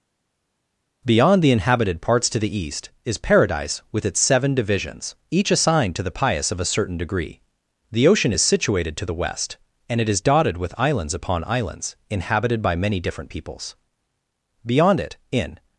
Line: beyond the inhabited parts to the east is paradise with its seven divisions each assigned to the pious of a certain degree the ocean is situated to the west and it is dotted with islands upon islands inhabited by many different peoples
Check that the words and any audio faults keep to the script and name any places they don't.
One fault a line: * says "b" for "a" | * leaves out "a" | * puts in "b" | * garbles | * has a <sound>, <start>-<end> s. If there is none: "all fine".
* puts in "beyond it in"